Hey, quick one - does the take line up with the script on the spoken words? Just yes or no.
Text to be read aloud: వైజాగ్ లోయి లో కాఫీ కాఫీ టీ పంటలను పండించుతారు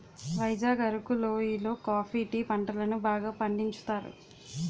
no